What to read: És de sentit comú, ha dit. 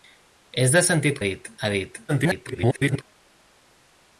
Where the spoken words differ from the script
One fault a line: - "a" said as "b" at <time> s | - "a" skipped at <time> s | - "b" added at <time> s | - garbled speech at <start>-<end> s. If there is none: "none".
- "comú" said as "dit" at 1.3 s
- garbled speech at 2.1-3.0 s